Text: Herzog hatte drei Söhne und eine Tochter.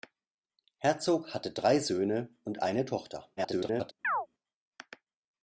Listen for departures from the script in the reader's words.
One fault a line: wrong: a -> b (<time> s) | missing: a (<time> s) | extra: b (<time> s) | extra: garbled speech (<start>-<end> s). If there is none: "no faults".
extra: garbled speech (3.4-3.9 s)